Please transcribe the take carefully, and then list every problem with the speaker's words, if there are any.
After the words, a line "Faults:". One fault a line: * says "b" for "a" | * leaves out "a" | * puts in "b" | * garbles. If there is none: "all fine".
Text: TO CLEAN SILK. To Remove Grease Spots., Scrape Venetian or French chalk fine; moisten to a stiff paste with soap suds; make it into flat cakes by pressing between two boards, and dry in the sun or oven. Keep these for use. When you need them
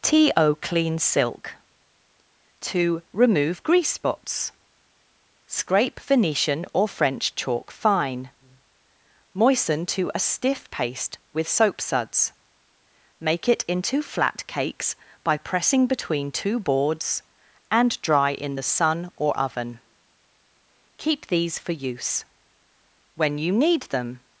TO CLEAN SILK. To Remove Grease Spots., Scrape Venetian or French chalk fine; moisten to a stiff paste with soap suds; make it into flat cakes by pressing between two boards, and dry in the sun or oven. Keep these for use. When you need them
Faults:
all fine